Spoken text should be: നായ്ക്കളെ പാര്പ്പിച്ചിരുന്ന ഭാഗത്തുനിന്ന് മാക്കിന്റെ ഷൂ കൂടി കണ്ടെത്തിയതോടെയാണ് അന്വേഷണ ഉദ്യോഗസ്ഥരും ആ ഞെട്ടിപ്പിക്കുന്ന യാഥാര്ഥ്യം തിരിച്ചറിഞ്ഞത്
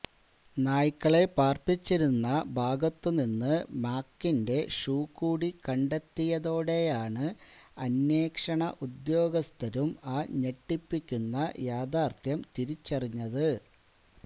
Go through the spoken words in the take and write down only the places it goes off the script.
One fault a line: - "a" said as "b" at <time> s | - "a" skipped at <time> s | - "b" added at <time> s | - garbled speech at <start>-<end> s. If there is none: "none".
none